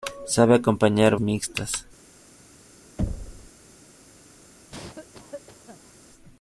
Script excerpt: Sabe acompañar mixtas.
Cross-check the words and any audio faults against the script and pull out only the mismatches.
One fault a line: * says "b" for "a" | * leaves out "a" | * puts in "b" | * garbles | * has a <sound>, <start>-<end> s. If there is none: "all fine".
* has a thud, 3.0-3.5 s
* has a cough, 4.7-5.9 s